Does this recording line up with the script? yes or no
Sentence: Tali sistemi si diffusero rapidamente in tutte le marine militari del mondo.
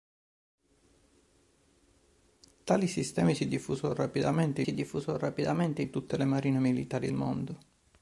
no